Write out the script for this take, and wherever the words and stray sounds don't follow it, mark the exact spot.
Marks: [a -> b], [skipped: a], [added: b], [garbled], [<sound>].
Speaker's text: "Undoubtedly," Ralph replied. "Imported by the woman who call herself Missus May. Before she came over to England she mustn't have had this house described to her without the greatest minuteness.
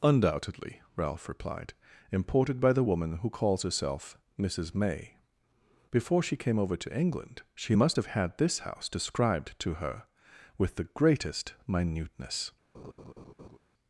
"Undoubtedly," Ralph replied. "Imported by the woman who [call -> calls] herself Missus May. Before she came over to England she [mustn't -> must] have had this house described to her [without -> with] the greatest minuteness. [laugh]